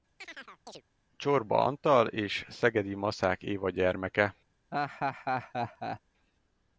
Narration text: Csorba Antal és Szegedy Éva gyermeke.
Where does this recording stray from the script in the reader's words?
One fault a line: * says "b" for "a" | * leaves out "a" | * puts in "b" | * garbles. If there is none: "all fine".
* puts in "Maszák"